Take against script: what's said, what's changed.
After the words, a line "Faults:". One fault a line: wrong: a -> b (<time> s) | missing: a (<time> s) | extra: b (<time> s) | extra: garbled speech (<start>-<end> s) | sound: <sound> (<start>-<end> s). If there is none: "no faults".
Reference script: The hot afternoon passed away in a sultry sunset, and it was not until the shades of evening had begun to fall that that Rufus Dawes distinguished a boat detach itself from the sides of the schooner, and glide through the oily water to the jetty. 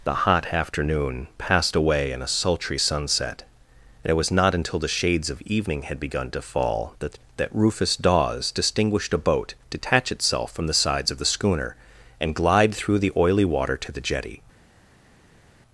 The hot afternoon passed away in a sultry sunset, and it was not until the shades of evening had begun to fall that that Rufus Dawes distinguished a boat detach itself from the sides of the schooner, and glide through the oily water to the jetty.
Faults:
no faults